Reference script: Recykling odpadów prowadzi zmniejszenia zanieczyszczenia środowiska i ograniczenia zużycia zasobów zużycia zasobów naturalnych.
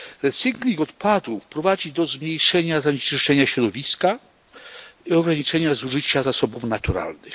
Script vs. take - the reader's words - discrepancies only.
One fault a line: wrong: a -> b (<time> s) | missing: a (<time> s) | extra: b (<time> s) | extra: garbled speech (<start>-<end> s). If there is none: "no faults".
extra: do (1.9 s)
missing: zużycia zasobów (6.6 s)